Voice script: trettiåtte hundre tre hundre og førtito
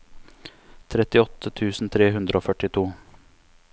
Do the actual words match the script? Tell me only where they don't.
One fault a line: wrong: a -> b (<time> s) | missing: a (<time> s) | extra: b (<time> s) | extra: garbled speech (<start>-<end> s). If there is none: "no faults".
wrong: hundre -> tusen (1.6 s)